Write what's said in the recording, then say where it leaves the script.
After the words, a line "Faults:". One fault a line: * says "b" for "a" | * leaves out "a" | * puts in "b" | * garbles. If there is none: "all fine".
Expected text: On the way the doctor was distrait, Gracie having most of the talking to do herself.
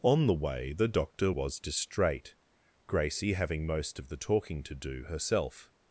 On the way the doctor was distrait, Gracie having most of the talking to do herself.
Faults:
all fine